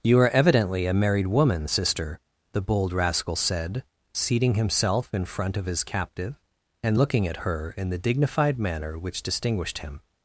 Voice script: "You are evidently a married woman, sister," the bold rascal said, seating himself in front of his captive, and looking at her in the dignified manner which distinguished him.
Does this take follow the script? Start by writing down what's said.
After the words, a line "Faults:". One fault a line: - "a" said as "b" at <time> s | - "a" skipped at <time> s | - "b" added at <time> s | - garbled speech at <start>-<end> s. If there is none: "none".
"You are evidently a married woman, sister," the bold rascal said, seating himself in front of his captive, and looking at her in the dignified manner which distinguished him.
Faults:
none